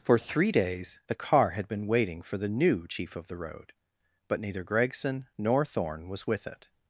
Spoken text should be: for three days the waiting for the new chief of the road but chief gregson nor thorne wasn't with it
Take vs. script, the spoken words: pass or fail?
fail